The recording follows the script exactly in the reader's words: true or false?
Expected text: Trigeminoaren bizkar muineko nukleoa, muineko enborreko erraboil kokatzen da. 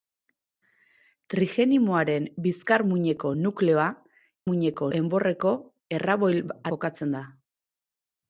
true